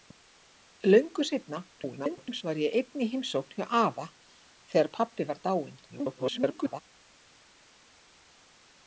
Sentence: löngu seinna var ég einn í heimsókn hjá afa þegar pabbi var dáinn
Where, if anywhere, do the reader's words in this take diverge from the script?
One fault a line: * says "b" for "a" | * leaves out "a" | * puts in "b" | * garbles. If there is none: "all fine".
* garbles
* garbles